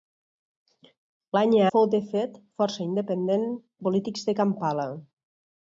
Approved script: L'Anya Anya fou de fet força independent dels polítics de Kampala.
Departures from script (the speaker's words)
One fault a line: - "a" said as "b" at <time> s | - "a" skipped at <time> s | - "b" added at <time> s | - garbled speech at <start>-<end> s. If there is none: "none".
- "Anya" skipped at 1.7 s
- "dels" skipped at 3.5 s